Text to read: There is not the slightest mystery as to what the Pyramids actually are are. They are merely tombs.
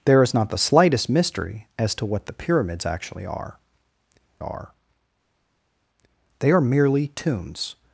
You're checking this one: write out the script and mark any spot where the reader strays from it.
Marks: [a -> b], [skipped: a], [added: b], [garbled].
There is not the slightest mystery as to what the Pyramids actually are are. They are merely tombs.